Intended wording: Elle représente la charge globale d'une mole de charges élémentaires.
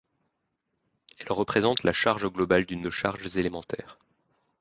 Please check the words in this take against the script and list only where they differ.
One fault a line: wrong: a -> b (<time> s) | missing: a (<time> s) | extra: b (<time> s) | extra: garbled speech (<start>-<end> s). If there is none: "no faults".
missing: mole (2.9 s)